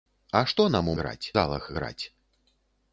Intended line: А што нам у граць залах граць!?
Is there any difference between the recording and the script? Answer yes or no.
no